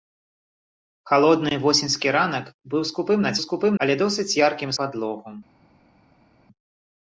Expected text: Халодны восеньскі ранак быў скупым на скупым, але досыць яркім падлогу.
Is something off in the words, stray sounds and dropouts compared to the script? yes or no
no